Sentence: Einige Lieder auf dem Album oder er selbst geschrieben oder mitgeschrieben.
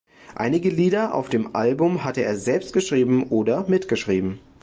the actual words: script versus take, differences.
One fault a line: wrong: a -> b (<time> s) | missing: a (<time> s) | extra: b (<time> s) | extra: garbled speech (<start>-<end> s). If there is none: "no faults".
wrong: oder -> hatte (2.0 s)